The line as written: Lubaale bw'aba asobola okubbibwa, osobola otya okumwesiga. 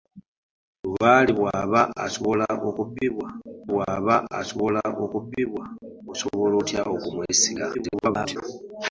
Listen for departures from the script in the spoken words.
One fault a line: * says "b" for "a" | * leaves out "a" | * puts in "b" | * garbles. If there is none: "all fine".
* puts in "bw'aba asobola okubbibwa"
* garbles